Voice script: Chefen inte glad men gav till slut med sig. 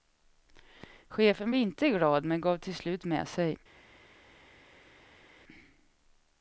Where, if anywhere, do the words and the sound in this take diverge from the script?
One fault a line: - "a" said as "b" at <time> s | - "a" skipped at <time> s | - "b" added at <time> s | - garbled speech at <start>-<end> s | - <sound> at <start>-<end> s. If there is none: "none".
none